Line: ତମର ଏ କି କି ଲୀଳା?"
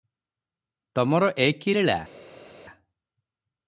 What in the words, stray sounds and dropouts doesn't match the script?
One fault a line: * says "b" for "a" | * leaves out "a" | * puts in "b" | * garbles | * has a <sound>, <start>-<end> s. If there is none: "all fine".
* leaves out "କି"